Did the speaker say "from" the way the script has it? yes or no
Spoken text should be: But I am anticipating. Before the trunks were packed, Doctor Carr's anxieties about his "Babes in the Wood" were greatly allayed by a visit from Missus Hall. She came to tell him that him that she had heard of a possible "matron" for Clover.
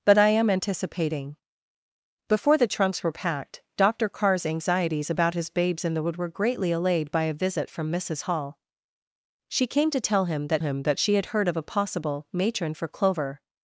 yes